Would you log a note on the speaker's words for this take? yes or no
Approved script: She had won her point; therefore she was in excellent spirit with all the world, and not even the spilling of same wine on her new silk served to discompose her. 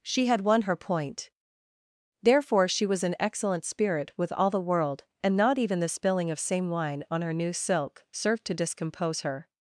no